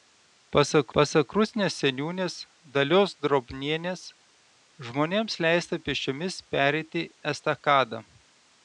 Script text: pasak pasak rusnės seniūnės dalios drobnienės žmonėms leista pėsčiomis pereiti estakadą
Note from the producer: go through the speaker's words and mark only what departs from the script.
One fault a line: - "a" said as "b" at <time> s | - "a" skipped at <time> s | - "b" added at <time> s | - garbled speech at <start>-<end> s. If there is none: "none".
none